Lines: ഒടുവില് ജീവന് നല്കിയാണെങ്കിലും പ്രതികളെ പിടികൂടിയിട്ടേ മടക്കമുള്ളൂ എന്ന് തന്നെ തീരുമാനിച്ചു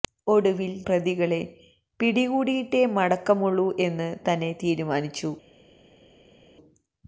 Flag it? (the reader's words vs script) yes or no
yes